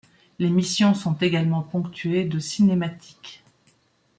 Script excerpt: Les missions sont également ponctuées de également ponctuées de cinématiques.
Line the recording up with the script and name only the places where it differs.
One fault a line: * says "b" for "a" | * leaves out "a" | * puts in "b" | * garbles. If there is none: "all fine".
* leaves out "également ponctuées de"